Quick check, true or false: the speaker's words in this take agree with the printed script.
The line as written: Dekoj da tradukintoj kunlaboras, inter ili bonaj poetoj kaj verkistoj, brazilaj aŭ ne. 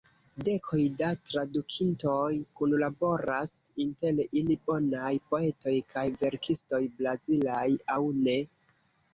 true